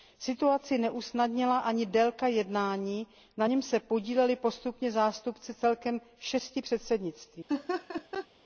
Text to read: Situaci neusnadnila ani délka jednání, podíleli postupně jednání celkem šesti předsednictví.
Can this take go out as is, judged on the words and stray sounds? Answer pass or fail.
fail